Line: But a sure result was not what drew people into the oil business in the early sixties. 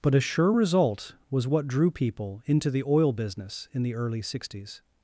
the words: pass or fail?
fail